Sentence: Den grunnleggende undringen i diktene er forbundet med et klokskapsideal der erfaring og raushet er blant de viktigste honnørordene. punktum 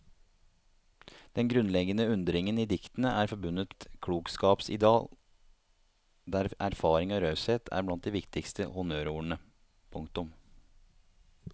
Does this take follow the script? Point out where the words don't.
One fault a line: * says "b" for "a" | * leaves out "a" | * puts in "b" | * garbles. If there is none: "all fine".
* leaves out "med"